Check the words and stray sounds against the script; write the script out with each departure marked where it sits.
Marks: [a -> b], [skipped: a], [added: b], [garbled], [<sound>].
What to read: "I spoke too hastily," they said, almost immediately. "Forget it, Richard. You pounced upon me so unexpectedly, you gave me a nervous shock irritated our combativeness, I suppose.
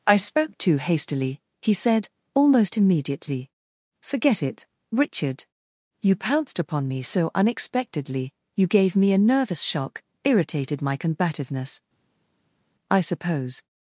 "I spoke too hastily," [they -> he] said, almost immediately. "Forget it, Richard. You pounced upon me so unexpectedly, you gave me a nervous shock irritated [our -> my] combativeness, I suppose.